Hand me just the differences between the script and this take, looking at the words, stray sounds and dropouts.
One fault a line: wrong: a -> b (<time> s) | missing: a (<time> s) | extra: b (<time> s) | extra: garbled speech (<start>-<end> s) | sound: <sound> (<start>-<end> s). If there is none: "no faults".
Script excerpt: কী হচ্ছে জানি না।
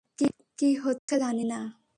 sound: dropout (1.0-1.1 s)